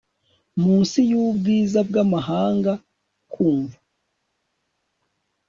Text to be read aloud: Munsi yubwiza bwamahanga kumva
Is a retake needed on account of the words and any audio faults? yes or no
no